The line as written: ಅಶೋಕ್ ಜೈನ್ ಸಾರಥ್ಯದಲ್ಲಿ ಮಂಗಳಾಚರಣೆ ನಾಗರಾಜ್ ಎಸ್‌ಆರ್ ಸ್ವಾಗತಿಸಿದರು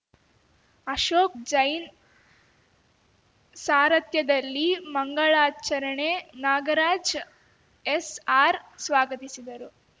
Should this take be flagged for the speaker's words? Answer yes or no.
no